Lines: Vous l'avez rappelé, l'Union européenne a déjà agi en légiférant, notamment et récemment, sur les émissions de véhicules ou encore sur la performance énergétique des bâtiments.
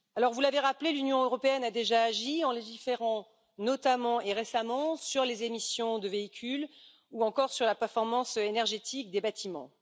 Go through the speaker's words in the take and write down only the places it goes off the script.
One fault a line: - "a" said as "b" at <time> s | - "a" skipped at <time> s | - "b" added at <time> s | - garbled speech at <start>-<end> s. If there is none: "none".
none